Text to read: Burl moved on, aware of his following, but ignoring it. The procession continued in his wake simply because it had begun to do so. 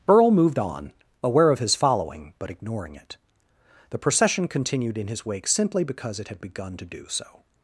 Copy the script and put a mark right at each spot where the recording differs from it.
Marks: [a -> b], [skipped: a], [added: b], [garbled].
Burl moved on, aware of his following, but ignoring it. The procession continued in his wake simply because it had begun to do so.